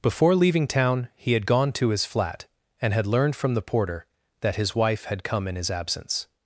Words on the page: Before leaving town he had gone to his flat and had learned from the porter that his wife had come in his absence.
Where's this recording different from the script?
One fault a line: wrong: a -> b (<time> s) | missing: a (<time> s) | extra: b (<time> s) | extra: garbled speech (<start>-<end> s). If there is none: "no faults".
no faults